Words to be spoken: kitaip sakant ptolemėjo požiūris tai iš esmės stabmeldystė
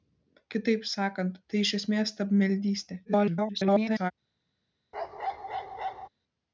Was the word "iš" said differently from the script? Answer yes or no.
no